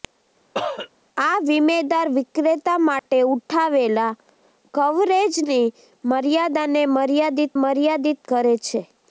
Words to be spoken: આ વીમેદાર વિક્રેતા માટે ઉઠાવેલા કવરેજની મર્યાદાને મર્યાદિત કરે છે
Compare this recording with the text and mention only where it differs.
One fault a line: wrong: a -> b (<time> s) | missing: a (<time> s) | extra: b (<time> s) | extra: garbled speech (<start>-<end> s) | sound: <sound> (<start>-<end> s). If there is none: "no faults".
sound: cough (0.5-0.9 s)
sound: dropout (3.0-3.1 s)
extra: મર્યાદિત (7.6 s)